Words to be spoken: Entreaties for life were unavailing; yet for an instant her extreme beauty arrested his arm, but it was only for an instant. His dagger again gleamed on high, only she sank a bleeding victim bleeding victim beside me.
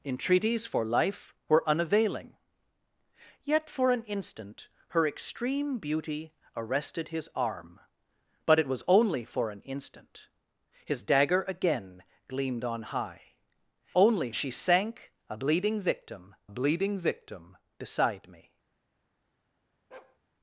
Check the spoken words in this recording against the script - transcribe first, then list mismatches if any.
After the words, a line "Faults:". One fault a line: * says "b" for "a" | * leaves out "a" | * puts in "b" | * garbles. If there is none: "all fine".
Entreaties for life were unavailing; yet for an instant her extreme beauty arrested his arm, but it was only for an instant. His dagger again gleamed on high, only she sank a bleeding victim bleeding victim beside me.
Faults:
all fine